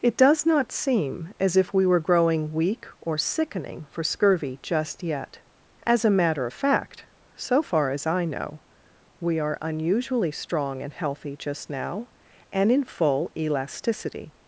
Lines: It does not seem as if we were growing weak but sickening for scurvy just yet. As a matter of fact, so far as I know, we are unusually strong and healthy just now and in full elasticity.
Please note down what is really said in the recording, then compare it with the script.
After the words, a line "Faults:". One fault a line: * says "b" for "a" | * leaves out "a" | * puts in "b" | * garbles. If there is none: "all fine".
It does not seem as if we were growing weak or sickening for scurvy just yet. As a matter of fact, so far as I know, we are unusually strong and healthy just now and in full elasticity.
Faults:
* says "or" for "but"